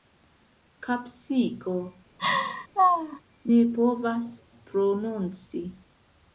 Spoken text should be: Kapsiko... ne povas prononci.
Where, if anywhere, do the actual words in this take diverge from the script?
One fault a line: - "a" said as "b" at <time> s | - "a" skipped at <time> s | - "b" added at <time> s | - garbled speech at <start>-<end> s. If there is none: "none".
none